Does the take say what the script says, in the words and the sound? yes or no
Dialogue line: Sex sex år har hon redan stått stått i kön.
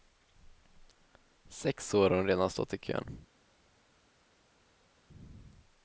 no